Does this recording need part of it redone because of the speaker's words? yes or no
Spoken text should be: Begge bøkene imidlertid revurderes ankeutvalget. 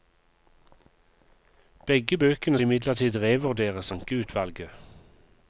no